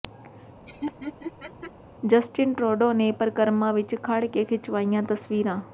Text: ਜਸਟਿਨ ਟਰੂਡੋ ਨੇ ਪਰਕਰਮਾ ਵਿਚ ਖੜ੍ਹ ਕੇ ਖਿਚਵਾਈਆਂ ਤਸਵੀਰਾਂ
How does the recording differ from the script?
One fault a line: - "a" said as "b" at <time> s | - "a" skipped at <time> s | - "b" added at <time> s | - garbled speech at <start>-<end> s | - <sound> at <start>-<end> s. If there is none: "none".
- laugh at 0.7-1.7 s